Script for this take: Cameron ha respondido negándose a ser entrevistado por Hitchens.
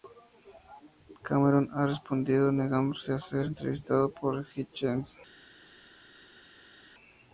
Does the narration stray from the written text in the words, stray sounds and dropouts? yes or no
no